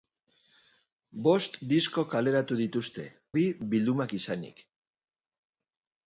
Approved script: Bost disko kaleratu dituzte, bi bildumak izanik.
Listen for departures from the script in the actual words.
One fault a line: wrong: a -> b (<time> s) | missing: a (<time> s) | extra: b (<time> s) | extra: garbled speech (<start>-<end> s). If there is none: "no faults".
no faults